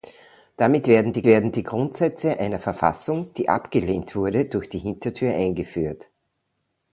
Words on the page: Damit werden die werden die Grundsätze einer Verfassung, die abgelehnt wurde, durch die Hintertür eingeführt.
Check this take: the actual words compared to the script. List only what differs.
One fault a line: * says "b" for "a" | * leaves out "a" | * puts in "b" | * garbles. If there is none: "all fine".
all fine